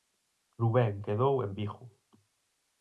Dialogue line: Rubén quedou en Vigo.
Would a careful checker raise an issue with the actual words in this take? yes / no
no